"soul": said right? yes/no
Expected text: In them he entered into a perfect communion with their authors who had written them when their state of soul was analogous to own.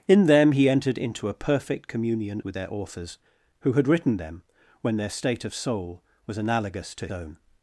yes